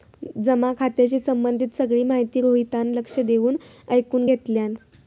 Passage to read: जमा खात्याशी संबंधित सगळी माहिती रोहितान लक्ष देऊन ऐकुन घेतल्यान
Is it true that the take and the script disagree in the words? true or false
false